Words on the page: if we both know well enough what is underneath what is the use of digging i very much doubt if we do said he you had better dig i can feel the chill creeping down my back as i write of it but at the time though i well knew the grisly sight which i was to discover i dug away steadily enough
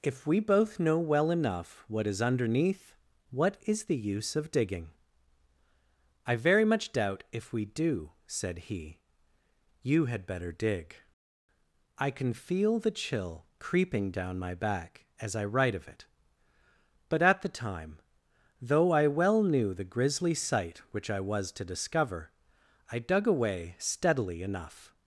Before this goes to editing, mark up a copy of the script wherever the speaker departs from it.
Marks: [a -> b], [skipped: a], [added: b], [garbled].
if we both know well enough what is underneath what is the use of digging i very much doubt if we do said he you had better dig i can feel the chill creeping down my back as i write of it but at the time though i well knew the grisly sight which i was to discover i dug away steadily enough